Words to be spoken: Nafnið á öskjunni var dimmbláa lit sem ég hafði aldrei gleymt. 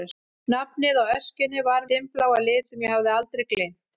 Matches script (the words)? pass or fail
pass